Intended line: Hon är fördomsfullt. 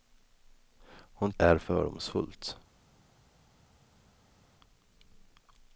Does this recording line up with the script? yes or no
yes